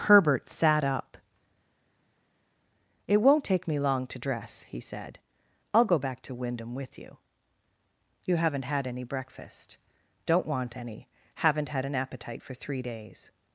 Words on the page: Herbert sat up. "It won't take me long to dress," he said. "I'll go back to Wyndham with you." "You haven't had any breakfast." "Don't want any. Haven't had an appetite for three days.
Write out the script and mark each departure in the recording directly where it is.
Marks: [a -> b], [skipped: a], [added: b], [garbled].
Herbert sat up. "It won't take me long to dress," he said. "I'll go back to Wyndham with you." "You haven't had any breakfast." "Don't want any. Haven't had an appetite for three days.